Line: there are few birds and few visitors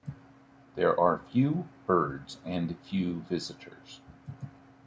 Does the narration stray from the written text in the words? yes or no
no